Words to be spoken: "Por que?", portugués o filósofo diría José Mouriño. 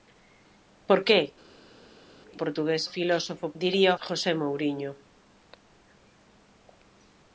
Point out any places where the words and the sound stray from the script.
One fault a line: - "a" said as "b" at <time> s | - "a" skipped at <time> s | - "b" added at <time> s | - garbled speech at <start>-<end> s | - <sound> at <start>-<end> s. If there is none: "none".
none